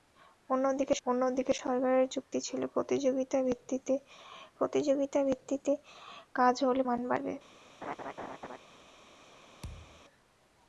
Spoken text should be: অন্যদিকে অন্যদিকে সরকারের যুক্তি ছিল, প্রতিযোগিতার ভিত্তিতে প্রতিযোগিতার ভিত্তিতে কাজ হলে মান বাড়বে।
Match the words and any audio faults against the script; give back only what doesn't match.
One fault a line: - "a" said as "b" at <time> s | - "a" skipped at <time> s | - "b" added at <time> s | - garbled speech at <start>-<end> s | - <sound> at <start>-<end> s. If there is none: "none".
- laugh at 7.8-8.6 s
- thud at 9.6-10.0 s